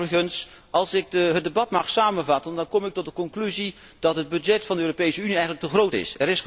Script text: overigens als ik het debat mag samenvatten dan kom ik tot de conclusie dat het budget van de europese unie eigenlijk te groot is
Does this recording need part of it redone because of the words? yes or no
no